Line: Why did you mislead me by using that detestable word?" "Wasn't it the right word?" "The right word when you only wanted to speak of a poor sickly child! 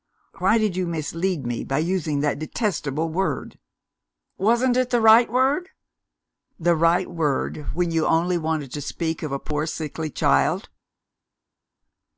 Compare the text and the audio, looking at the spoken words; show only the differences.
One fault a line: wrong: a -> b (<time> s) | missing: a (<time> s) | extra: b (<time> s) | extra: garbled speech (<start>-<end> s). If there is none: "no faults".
no faults